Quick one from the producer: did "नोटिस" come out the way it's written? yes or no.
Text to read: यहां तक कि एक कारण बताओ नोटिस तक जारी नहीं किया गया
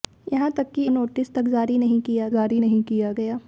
no